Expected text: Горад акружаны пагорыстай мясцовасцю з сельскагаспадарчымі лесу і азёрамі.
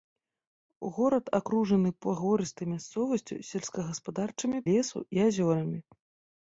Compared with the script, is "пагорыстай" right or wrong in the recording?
right